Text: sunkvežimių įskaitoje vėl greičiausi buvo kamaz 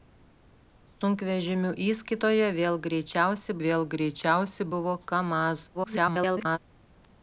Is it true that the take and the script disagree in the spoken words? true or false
true